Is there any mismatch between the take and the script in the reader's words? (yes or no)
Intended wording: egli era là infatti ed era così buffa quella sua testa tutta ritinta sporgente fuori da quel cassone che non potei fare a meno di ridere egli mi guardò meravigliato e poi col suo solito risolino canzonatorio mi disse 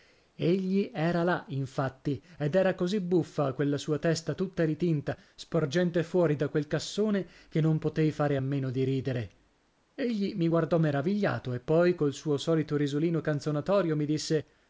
no